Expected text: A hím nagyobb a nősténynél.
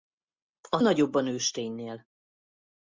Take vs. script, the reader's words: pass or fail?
fail